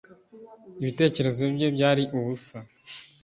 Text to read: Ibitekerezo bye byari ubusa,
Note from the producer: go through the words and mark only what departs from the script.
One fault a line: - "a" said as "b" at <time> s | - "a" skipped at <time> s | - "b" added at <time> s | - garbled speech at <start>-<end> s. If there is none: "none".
none